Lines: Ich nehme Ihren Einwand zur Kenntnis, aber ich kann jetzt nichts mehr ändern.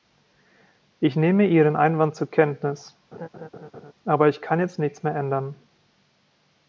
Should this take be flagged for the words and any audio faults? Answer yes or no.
yes